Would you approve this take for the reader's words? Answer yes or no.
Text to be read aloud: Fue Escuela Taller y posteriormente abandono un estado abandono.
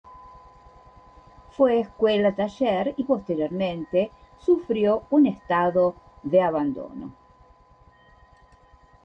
no